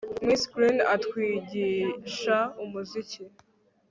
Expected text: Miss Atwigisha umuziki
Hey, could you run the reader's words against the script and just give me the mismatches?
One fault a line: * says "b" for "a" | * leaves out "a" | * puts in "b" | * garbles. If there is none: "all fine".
* puts in "Green"